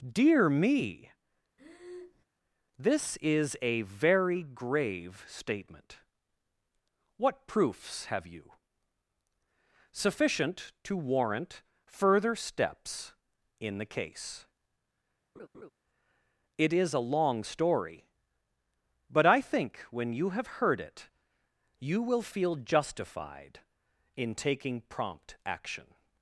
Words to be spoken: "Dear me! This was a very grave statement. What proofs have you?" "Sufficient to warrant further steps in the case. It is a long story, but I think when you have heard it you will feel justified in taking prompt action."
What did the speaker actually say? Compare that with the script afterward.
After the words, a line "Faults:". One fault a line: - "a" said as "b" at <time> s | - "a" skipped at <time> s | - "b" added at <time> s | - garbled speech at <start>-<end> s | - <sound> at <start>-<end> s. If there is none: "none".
"Dear me! This is a very grave statement. What proofs have you?" "Sufficient to warrant further steps in the case. It is a long story, but I think when you have heard it you will feel justified in taking prompt action."
Faults:
- breath at 1.6-2.2 s
- "was" said as "is" at 3.2 s
- laugh at 15.3-15.7 s